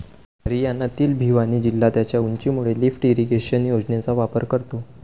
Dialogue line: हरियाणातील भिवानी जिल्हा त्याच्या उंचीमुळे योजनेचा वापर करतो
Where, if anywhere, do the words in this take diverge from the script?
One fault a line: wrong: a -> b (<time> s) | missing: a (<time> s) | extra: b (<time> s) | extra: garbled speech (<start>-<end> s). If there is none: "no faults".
extra: लिफ्ट इरिगेशन (2.8 s)